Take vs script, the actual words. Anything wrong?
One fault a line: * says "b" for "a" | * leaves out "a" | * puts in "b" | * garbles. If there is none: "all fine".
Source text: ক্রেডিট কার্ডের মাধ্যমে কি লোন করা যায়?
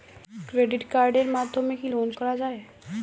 all fine